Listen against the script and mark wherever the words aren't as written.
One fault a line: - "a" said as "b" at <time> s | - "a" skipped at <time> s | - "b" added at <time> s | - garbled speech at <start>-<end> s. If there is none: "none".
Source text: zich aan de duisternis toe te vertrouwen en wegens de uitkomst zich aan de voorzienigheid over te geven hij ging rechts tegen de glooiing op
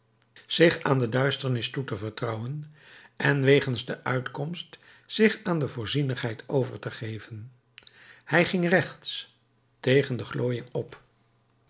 none